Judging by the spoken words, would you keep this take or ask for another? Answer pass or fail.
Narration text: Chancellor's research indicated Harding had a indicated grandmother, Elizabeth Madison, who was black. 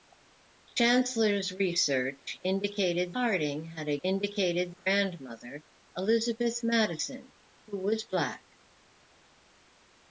pass